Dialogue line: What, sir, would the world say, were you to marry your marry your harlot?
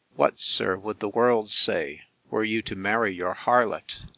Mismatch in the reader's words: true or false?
true